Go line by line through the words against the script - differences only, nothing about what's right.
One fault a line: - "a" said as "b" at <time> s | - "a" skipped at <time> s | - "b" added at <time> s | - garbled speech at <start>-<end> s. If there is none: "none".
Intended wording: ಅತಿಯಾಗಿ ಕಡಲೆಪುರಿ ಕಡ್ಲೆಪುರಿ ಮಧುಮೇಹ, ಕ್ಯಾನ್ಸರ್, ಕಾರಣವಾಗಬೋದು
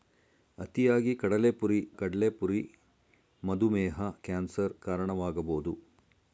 none